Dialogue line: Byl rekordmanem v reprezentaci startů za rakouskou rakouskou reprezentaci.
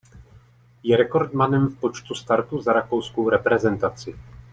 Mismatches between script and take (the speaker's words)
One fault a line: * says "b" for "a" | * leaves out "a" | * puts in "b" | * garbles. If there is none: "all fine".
* says "Je" for "Byl"
* says "počtu" for "reprezentaci"
* leaves out "rakouskou"